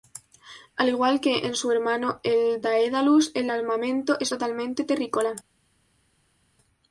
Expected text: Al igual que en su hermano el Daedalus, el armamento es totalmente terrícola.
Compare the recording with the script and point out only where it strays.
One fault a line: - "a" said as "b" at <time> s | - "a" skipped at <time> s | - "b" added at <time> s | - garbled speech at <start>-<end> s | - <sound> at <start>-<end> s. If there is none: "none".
none